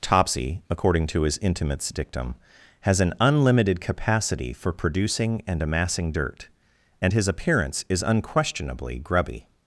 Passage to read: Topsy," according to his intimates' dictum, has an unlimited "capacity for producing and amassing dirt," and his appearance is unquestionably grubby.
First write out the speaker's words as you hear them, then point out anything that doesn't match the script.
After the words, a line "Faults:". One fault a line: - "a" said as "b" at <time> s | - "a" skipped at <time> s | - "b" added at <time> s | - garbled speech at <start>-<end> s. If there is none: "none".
Topsy," according to his intimates' dictum, has an unlimited "capacity for producing and amassing dirt," and his appearance is unquestionably grubby.
Faults:
none